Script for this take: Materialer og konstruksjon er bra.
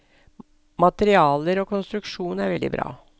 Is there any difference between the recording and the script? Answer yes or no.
yes